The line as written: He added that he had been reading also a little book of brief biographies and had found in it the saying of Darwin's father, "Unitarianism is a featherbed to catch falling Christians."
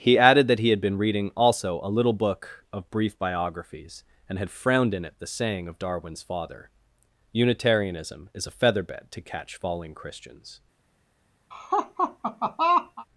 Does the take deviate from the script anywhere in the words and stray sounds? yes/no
yes